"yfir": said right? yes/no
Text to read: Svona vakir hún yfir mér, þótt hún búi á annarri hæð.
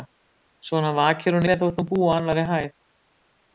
no